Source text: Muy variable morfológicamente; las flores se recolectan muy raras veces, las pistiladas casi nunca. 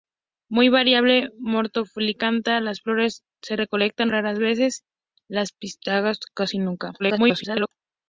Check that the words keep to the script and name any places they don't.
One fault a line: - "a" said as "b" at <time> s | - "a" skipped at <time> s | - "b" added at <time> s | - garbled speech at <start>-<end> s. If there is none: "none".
- "muy" skipped at 4.1 s
- garbled speech at 7.0-7.7 s